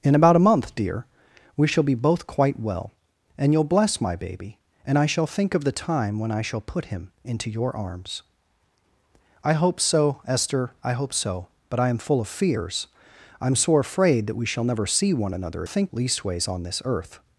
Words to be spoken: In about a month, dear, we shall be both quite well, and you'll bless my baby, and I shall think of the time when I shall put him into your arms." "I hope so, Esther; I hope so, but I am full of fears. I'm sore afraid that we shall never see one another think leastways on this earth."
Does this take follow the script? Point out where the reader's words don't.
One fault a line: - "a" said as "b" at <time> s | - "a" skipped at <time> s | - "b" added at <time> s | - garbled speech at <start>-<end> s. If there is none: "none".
none